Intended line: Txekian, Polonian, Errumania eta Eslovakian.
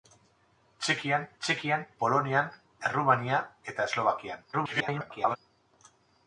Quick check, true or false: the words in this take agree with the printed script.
false